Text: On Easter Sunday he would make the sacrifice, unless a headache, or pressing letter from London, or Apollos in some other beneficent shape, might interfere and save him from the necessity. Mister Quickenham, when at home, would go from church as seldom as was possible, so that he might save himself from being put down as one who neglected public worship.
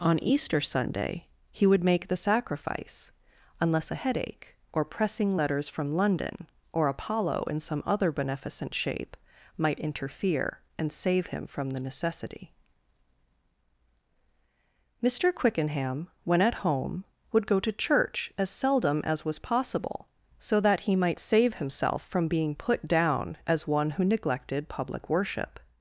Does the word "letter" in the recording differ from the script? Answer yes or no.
yes